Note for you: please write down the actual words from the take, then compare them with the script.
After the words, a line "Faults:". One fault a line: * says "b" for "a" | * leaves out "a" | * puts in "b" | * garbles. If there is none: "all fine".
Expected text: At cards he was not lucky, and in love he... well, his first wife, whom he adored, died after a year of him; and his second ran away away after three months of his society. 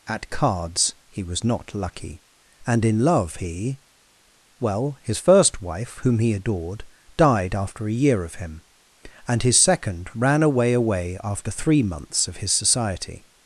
At cards he was not lucky, and in love he... well, his first wife, whom he adored, died after a year of him; and his second ran away away after three months of his society.
Faults:
all fine